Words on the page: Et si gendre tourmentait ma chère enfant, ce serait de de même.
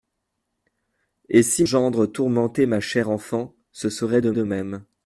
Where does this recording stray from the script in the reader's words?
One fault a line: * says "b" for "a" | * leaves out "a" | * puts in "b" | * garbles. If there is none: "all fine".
all fine